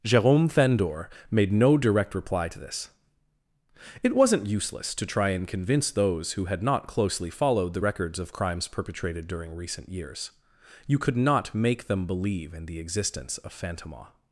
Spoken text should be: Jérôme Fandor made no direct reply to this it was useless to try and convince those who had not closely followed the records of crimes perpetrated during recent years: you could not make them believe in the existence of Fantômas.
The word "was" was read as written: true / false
false